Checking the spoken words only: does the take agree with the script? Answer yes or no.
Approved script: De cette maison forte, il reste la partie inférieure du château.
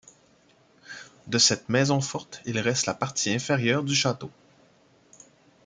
yes